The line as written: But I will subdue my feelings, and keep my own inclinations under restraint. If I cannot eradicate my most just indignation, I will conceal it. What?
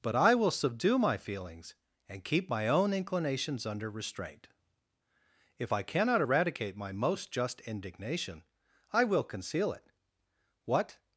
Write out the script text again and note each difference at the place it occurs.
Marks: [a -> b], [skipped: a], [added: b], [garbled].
But I will subdue my feelings, and keep my own inclinations under restraint. If I cannot eradicate my most just indignation, I will conceal it. What?